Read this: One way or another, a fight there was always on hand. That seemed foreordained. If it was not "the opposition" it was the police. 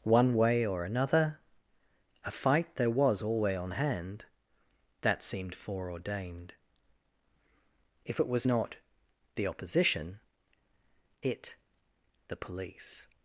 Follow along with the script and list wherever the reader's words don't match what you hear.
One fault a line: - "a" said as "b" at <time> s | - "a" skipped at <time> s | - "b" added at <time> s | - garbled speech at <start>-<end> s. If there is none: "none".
- "always" said as "alway" at 3.2 s
- "was" skipped at 11.6 s